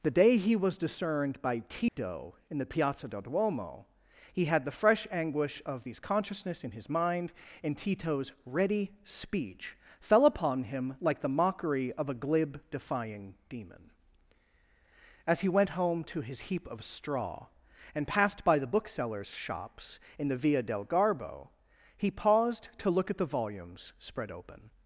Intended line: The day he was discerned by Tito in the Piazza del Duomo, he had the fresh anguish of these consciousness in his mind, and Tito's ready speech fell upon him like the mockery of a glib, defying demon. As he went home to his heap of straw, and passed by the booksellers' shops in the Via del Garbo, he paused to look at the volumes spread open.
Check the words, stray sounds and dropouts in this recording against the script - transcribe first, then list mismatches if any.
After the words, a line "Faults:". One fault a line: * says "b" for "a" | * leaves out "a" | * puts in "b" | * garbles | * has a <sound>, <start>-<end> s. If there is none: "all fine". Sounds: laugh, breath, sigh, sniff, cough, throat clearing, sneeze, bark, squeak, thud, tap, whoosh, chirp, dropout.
The day he was discerned by Tito in the Piazza del Duomo, he had the fresh anguish of these consciousness in his mind, and Tito's ready speech fell upon him like the mockery of a glib, defying demon. As he went home to his heap of straw, and passed by the booksellers' shops in the Via del Garbo, he paused to look at the volumes spread open.
Faults:
* has a dropout, 1.9-2.0 s